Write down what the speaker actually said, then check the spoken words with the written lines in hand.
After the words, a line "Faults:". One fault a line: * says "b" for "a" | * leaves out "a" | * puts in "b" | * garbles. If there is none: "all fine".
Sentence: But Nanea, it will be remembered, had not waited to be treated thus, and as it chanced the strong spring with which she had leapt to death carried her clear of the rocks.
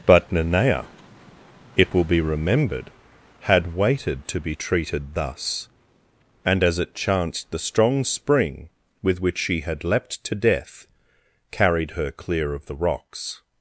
But Nanea, it will be remembered, had waited to be treated thus, and as it chanced the strong spring with which she had leapt to death carried her clear of the rocks.
Faults:
* leaves out "not"